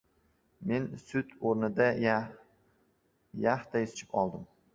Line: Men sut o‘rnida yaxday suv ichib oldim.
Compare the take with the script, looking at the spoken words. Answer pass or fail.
fail